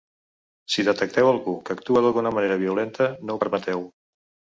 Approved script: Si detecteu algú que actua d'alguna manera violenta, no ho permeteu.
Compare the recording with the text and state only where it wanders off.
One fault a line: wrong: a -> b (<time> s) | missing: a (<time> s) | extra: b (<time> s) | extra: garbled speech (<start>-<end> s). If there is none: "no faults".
no faults